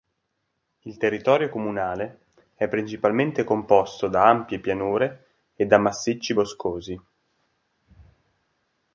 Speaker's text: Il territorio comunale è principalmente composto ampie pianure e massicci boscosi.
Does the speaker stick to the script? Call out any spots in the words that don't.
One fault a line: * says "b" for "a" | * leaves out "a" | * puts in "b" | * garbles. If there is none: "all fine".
* puts in "da"
* puts in "da"